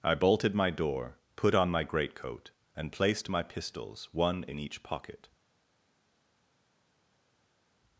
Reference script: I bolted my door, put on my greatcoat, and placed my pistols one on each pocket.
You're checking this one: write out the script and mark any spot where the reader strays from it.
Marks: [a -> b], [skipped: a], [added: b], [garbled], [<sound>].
I bolted my door, put on my greatcoat, and placed my pistols one [on -> in] each pocket.